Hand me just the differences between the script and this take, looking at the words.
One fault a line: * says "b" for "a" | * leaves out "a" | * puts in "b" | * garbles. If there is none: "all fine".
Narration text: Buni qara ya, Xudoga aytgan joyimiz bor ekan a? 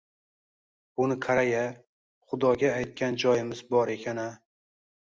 all fine